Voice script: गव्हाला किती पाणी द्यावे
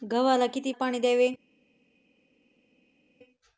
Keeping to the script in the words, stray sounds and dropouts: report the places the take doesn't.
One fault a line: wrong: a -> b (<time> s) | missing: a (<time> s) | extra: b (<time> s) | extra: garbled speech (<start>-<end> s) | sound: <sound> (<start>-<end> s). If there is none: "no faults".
no faults